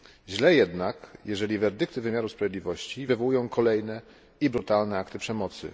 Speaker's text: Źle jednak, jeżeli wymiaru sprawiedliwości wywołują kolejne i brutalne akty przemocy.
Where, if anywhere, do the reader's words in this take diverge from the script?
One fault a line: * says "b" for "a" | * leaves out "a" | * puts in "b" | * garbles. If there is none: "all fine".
* puts in "werdykty"